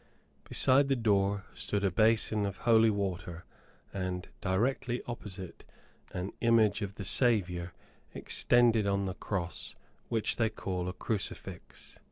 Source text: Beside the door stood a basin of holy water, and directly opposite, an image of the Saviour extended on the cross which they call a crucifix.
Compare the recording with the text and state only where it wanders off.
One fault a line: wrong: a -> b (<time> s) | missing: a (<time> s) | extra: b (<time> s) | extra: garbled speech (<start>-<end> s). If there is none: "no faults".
no faults